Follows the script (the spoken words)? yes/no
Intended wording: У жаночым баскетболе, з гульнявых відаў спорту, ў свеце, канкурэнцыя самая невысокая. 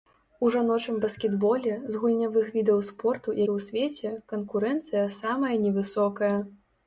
yes